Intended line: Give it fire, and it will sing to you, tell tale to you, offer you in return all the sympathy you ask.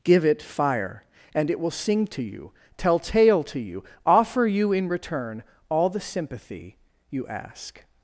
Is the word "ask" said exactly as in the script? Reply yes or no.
yes